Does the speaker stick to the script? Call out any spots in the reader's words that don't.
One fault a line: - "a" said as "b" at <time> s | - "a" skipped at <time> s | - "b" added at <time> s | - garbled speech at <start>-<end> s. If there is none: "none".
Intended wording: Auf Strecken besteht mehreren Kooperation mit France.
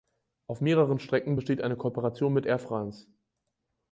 - "mehreren" added at 0.6 s
- "mehreren" said as "eine" at 1.6 s
- "Air" added at 2.5 s